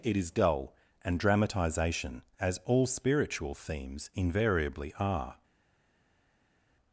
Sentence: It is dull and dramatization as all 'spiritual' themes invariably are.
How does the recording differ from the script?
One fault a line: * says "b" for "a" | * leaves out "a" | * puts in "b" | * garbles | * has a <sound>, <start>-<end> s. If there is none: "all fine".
all fine